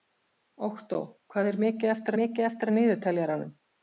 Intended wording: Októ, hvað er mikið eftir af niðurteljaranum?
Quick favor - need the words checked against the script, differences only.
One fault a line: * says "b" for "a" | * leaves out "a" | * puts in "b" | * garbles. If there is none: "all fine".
* puts in "mikið eftir"